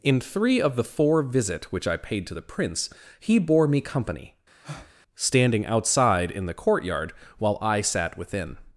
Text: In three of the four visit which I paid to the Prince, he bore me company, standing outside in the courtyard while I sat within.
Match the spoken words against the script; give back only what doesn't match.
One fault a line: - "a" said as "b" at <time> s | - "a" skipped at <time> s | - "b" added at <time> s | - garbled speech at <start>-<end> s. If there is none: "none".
none